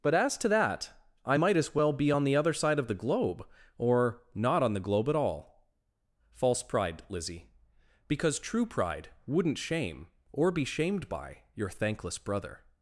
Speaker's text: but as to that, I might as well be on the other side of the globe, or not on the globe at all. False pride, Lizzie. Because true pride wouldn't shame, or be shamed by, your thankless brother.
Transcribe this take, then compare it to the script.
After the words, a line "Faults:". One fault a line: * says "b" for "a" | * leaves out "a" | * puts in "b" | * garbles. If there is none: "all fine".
but as to that, I might as well be on the other side of the globe, or not on the globe at all. False pride, Lizzie. Because true pride wouldn't shame, or be shamed by, your thankless brother.
Faults:
all fine